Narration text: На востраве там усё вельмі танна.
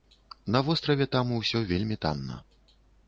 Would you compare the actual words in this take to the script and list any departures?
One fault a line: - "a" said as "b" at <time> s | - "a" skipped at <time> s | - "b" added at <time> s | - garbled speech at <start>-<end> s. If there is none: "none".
none